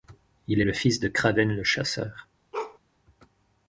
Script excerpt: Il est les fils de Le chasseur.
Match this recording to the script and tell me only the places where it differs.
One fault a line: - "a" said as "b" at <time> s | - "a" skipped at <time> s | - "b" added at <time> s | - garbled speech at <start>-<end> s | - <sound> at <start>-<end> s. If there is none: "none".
- "les" said as "le" at 0.6 s
- "Kraven" added at 1.1 s
- bark at 2.5-2.8 s